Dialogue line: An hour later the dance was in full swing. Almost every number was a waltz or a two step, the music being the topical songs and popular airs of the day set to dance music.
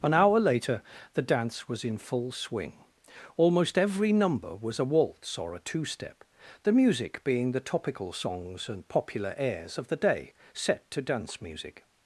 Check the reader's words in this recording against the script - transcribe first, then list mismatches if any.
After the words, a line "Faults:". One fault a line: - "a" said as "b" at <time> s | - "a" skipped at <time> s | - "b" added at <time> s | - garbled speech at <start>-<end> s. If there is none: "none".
An hour later the dance was in full swing. Almost every number was a waltz or a two step, the music being the topical songs and popular airs of the day set to dance music.
Faults:
none